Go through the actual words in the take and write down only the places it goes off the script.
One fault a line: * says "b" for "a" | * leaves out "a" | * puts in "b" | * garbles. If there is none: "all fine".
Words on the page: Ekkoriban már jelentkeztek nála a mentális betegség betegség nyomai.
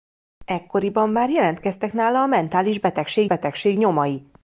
all fine